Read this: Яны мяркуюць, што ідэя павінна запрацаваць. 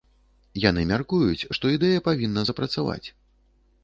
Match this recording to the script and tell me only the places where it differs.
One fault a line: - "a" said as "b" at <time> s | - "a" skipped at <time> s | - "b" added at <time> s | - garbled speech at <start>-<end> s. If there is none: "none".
none